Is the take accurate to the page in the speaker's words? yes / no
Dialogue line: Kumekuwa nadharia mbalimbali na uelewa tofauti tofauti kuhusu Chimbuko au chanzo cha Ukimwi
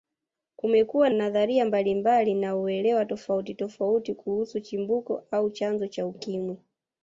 yes